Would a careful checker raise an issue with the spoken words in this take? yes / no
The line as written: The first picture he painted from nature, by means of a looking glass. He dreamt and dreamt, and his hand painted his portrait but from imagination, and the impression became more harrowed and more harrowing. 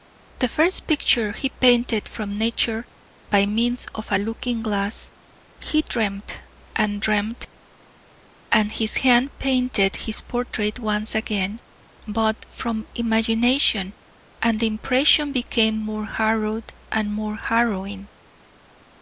yes